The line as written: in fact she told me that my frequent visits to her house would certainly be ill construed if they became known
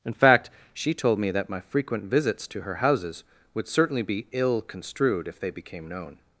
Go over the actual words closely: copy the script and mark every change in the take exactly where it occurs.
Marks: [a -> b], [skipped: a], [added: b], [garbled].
in fact she told me that my frequent visits to her [house -> houses] would certainly be ill construed if they became known